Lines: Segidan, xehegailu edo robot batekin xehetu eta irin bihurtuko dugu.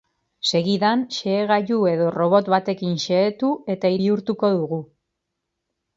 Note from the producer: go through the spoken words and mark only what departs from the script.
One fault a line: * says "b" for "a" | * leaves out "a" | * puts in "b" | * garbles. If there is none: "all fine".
* leaves out "irin"